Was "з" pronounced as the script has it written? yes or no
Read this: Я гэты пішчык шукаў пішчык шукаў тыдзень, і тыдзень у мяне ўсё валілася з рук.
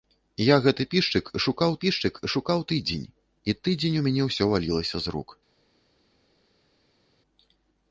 yes